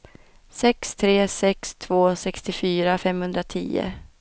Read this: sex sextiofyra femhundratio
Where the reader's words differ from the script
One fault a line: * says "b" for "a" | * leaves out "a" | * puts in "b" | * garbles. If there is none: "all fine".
* puts in "tre sex två"